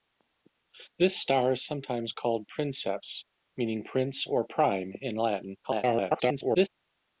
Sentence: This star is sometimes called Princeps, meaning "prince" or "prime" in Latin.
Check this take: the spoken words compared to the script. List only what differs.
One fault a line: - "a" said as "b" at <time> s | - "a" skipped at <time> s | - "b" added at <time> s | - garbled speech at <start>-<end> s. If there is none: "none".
- garbled speech at 5.6-6.7 s